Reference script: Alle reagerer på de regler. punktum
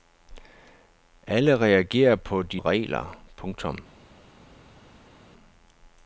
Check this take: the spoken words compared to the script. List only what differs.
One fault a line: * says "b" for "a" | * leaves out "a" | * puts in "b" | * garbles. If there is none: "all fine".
all fine